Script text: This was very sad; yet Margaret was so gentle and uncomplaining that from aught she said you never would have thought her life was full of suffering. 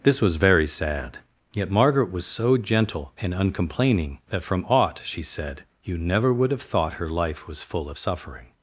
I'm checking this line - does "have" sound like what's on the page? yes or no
yes